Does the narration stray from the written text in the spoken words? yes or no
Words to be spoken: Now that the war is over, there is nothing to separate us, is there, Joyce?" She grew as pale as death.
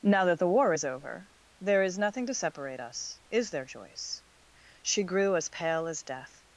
no